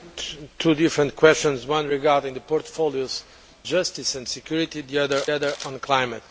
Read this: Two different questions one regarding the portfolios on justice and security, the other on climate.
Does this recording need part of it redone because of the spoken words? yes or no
yes